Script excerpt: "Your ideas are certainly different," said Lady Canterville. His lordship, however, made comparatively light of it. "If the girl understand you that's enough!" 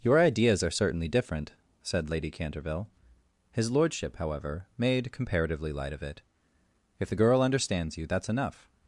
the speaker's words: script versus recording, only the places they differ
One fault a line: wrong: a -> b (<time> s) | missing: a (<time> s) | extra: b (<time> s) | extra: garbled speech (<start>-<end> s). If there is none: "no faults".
wrong: understand -> understands (7.4 s)